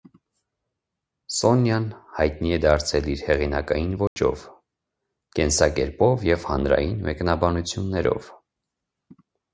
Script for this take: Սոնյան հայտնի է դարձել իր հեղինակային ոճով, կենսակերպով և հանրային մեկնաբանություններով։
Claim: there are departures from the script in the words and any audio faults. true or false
true